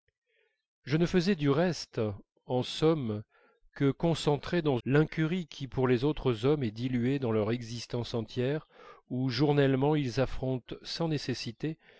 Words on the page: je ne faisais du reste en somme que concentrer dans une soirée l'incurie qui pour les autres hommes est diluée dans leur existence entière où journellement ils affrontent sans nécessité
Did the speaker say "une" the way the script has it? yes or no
no